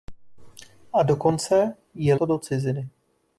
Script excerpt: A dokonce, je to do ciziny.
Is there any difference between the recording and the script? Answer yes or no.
no